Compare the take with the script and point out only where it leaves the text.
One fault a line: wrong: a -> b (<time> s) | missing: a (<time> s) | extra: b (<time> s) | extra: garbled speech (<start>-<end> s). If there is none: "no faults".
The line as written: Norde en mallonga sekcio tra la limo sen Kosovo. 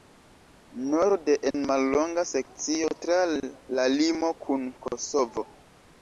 wrong: sen -> kun (4.4 s)